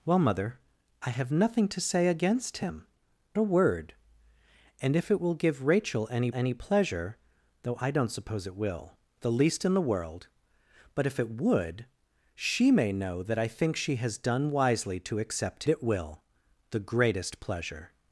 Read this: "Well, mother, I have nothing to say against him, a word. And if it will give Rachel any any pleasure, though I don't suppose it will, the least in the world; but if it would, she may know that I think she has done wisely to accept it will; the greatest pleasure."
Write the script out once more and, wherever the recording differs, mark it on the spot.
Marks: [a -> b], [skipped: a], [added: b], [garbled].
"Well, mother, I have nothing to say against him, a word. And if it will give Rachel any any pleasure, though I don't suppose it will, the least in the world; but if it would, she may know that I think she has done wisely to accept it will; the greatest pleasure."